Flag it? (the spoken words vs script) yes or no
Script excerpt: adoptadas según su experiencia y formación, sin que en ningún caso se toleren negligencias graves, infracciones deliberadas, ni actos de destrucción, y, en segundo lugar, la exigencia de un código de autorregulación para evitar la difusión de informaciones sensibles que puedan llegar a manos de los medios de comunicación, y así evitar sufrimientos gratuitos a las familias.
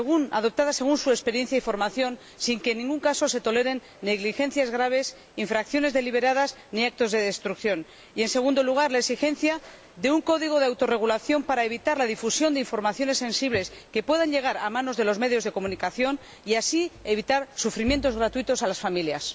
no